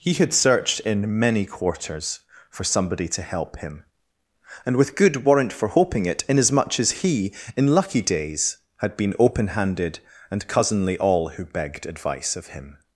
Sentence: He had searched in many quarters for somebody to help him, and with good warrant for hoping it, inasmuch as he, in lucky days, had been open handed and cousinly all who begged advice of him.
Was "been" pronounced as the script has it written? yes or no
yes